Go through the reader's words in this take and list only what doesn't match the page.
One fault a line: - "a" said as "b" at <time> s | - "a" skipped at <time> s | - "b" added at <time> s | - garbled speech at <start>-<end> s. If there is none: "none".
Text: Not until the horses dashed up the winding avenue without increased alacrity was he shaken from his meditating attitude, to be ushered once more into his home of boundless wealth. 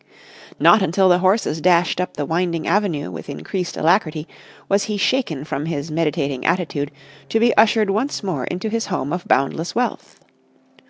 - "without" said as "with" at 3.1 s